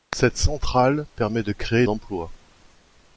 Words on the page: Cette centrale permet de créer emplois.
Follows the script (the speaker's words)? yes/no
yes